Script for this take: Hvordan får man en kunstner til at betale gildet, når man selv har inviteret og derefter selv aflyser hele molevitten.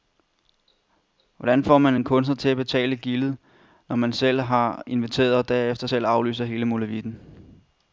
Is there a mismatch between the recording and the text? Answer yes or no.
no